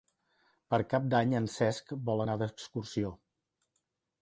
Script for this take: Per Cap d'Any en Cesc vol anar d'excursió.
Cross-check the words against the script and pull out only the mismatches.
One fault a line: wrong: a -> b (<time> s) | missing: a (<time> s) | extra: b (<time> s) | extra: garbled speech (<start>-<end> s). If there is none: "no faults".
no faults